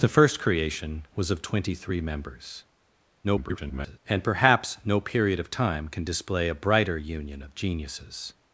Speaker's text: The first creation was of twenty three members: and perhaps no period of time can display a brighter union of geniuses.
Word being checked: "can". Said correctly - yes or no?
yes